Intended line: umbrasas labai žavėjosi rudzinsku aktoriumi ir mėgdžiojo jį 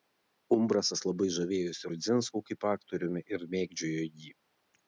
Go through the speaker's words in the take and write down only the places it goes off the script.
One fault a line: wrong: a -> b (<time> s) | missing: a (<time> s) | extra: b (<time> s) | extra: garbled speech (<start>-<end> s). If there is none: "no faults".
extra: kaip (2.5 s)